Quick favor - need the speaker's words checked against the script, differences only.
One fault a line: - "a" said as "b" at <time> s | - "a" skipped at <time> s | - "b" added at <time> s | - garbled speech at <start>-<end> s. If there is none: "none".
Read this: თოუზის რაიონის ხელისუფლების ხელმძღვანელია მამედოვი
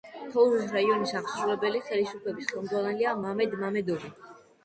- "აღმასრულებელი" added at 1.2 s
- "მამედ" added at 3.2 s